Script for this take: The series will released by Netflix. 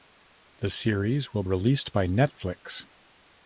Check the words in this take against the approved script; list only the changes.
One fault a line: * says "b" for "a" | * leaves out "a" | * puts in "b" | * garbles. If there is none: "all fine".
all fine